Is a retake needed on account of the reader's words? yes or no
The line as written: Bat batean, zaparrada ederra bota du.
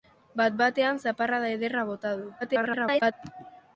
yes